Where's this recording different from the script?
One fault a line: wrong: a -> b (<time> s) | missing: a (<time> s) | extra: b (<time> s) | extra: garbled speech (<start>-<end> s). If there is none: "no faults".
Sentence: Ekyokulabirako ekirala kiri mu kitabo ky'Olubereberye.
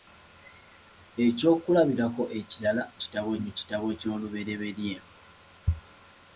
wrong: kiri -> kitabo (3.0 s)